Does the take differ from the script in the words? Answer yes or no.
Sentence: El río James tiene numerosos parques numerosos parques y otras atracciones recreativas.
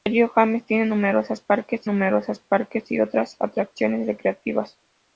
no